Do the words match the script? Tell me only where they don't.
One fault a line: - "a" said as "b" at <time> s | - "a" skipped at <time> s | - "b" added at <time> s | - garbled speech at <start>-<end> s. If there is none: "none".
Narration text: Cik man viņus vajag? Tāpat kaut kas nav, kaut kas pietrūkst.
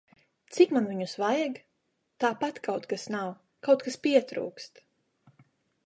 none